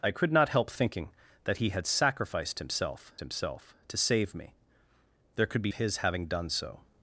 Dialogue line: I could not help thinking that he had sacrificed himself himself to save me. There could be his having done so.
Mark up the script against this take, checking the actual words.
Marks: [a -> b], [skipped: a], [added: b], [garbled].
I could not help thinking that he had sacrificed himself himself to save me. There could be his having done so.